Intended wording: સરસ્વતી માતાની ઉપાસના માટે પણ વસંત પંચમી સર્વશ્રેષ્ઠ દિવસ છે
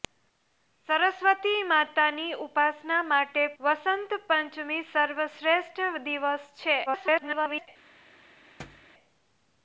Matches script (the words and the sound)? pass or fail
fail